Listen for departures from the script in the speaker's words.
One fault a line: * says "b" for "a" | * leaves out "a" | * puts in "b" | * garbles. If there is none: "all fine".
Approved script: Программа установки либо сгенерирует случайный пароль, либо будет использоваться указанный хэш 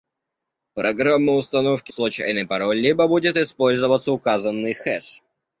* leaves out "либо сгенерирует"